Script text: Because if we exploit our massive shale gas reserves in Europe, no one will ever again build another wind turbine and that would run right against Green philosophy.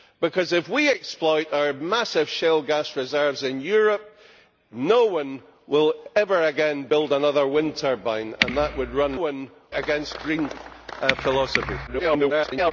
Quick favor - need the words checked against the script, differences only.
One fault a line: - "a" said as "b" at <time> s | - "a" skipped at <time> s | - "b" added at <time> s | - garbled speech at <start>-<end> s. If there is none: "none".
- "right" said as "one" at 9.1 s
- garbled speech at 11.9-12.7 s